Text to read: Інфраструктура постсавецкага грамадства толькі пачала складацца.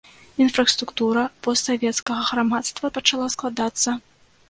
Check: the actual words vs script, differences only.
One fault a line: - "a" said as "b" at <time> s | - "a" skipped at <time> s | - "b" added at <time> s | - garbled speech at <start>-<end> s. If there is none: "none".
- "толькі" skipped at 2.9 s